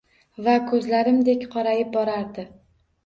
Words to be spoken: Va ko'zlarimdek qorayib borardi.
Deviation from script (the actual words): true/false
false